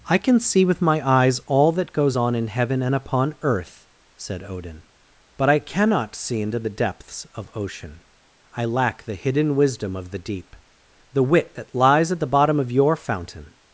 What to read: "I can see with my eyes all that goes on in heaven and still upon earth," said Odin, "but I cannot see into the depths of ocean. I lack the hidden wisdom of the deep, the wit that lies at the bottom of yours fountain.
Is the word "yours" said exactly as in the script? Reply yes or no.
no